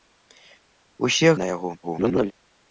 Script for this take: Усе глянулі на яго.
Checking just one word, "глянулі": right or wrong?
wrong